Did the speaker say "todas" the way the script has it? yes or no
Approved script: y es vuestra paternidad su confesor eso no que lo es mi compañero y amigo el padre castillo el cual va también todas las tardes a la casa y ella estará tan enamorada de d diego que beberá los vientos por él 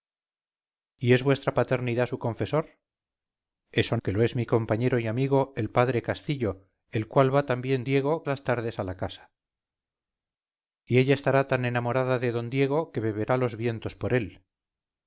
no